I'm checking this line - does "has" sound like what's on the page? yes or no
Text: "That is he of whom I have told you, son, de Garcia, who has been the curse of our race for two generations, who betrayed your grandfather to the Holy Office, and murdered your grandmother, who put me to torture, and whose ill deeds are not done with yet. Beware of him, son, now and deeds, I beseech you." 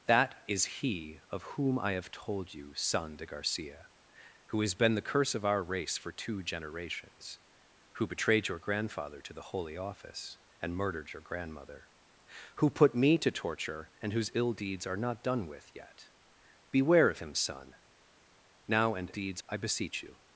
yes